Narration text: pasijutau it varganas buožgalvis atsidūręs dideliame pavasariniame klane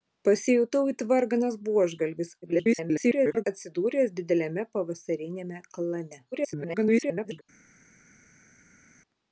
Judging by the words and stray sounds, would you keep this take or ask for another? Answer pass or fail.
fail